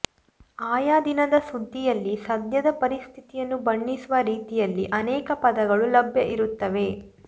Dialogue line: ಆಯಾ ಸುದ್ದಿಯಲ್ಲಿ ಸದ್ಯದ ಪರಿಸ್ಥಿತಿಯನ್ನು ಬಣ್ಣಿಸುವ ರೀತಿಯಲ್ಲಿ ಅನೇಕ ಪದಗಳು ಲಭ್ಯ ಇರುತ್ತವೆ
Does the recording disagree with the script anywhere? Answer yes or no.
yes